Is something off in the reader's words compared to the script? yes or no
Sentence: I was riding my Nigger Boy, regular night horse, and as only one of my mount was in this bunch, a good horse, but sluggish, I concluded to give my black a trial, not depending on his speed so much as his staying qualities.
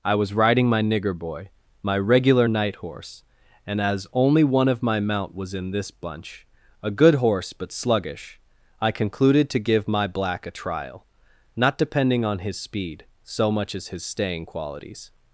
yes